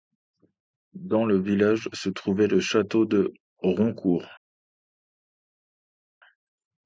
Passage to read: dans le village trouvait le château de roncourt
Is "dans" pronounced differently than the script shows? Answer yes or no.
no